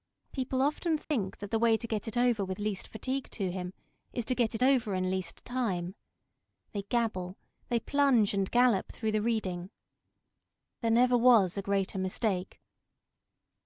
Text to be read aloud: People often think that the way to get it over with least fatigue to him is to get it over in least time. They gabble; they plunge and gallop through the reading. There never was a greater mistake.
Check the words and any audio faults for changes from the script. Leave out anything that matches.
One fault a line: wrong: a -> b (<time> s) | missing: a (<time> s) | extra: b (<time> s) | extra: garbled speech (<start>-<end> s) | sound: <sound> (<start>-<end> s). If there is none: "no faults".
sound: dropout (1.0-1.1 s)